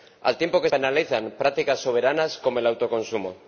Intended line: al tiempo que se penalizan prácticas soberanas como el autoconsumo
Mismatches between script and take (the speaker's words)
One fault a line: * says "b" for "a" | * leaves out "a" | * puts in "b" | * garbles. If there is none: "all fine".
* leaves out "se"